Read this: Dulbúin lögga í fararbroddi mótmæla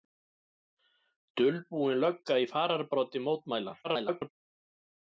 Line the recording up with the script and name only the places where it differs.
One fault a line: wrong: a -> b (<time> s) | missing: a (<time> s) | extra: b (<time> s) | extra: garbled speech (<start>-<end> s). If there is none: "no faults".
extra: garbled speech (3.8-4.3 s)